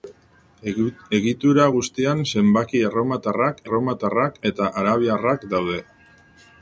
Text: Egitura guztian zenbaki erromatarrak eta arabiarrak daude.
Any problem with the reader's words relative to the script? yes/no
yes